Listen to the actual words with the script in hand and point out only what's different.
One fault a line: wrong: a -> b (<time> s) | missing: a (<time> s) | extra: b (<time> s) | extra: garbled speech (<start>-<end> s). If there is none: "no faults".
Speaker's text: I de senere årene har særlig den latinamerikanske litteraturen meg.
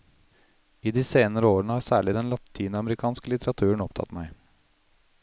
extra: opptatt (3.8 s)